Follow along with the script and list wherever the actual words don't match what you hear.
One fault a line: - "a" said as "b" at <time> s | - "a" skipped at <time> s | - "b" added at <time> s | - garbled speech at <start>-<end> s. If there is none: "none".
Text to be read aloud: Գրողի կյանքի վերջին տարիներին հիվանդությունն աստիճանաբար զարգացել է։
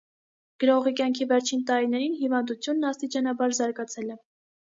none